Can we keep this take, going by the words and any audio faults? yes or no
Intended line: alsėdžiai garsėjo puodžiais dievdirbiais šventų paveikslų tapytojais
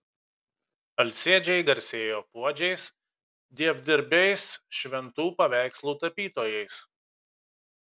yes